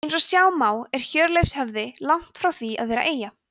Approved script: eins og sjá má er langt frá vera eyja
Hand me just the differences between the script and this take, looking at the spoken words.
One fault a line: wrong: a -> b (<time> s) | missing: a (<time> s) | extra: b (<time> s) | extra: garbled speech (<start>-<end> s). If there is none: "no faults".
extra: hjörleifshöfði (1.1 s)
extra: því að (2.6 s)